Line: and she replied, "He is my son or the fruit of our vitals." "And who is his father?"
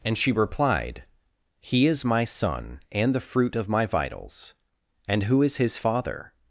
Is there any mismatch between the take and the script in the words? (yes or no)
yes